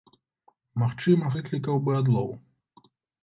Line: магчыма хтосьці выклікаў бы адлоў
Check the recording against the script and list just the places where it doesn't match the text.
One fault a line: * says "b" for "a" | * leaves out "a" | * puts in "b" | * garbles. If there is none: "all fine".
* leaves out "хтосьці"